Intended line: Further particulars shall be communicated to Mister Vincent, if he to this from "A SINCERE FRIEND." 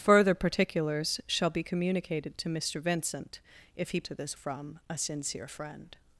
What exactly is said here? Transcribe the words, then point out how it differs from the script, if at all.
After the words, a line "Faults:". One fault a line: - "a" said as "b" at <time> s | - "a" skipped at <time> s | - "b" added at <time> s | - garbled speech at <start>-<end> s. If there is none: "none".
Further particulars shall be communicated to Mister Vincent, if he to this from "A SINCERE FRIEND."
Faults:
none